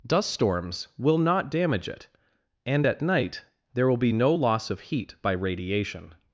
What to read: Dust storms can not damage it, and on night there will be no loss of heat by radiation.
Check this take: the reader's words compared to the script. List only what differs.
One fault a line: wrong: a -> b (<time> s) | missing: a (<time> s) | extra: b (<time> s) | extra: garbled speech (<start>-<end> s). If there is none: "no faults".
wrong: can -> will (1.0 s)
wrong: on -> at (2.8 s)